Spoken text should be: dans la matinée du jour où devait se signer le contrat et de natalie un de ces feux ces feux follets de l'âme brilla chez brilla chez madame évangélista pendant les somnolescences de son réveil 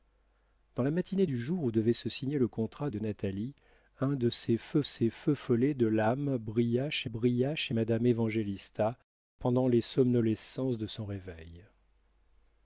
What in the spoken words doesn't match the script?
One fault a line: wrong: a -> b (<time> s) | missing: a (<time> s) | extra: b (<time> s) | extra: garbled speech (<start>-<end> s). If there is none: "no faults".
no faults